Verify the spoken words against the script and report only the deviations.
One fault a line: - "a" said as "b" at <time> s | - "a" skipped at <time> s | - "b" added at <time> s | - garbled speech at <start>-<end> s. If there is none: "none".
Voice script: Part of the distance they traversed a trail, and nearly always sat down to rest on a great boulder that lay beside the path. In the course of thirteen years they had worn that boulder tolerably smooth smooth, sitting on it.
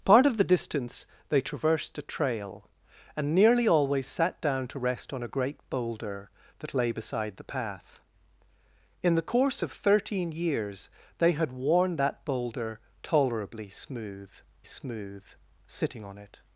none